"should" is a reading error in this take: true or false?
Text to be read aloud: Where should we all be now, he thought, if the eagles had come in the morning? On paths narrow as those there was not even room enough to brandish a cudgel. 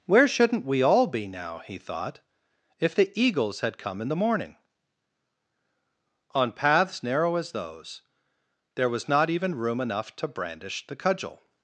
true